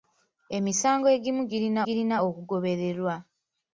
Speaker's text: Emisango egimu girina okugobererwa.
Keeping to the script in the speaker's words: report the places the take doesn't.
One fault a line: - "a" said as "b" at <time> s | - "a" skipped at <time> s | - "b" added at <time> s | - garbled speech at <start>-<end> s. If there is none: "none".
- "girina" added at 1.9 s